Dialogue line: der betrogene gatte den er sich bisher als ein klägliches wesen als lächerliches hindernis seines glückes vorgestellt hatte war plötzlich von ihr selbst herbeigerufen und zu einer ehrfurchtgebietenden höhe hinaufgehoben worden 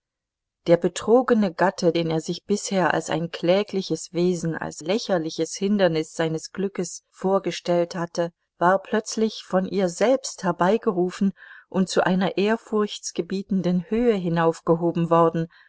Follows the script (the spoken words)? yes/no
yes